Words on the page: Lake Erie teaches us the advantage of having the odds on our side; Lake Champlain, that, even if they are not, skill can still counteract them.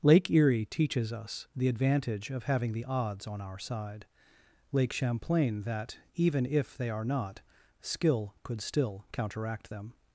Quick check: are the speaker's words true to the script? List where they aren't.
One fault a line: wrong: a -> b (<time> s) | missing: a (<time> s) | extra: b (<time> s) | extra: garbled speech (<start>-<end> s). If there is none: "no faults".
wrong: can -> could (8.4 s)